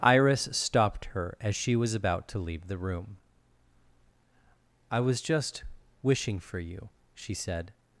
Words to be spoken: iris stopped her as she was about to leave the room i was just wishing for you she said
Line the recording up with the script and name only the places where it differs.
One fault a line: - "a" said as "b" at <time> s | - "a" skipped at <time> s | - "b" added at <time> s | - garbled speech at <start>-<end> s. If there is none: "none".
none